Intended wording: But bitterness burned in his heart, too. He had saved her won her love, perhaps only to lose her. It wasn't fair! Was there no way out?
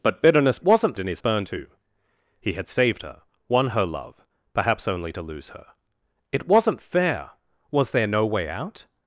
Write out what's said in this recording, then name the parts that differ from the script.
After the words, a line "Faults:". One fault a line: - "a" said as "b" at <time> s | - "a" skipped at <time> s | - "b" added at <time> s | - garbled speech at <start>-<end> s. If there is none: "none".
But bitterness wasn't in his burned, too. He had saved her won her love, perhaps only to lose her. It wasn't fair! Was there no way out?
Faults:
- "burned" said as "wasn't" at 0.6 s
- "heart" said as "burned" at 1.2 s